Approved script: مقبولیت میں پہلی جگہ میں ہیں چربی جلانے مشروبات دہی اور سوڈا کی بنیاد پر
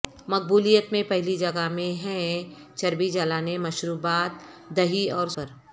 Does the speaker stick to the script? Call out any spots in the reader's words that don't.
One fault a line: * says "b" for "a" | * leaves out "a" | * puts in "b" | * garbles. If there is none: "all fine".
* leaves out "سوڈا کی بنیاد"